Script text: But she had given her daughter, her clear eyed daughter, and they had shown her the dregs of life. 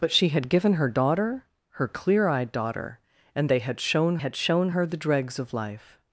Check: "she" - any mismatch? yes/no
no